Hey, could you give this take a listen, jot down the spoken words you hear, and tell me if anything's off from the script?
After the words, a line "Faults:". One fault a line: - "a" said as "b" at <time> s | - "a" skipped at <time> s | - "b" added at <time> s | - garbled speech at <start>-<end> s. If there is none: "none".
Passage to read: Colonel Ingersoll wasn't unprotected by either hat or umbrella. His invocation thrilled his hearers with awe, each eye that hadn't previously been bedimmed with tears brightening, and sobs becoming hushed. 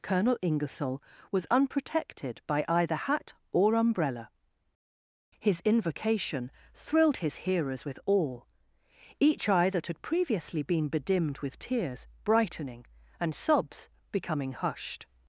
Colonel Ingersoll was unprotected by either hat or umbrella. His invocation thrilled his hearers with awe, each eye that had previously been bedimmed with tears brightening, and sobs becoming hushed.
Faults:
- "wasn't" said as "was" at 1.3 s
- "hadn't" said as "had" at 9.9 s